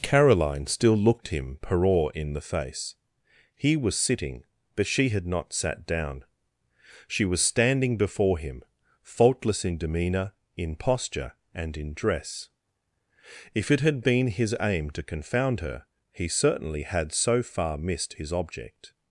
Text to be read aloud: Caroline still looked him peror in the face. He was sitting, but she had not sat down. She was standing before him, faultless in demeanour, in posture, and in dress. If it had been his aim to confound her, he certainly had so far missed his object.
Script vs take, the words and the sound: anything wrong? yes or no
no